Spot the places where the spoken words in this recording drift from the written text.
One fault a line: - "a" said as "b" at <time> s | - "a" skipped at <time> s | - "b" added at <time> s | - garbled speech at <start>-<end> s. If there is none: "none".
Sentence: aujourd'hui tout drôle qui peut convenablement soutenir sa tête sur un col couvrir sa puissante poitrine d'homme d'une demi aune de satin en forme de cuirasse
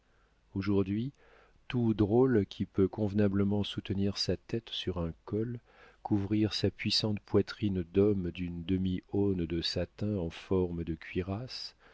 none